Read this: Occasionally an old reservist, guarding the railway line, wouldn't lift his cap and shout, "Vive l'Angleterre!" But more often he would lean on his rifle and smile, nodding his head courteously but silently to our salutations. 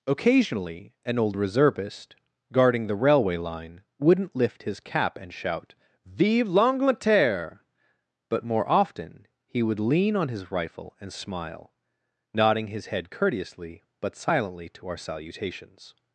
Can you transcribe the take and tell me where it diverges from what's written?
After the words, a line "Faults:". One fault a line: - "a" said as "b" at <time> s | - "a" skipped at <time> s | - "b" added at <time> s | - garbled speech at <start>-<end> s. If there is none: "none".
Occasionally an old reservist, guarding the railway line, wouldn't lift his cap and shout, "Vive l'Angleterre!" But more often he would lean on his rifle and smile, nodding his head courteously but silently to our salutations.
Faults:
none